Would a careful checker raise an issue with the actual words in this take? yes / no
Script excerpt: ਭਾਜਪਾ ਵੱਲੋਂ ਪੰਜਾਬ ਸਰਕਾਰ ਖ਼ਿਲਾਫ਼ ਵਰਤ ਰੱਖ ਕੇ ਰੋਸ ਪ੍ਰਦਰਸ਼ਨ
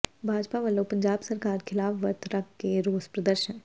no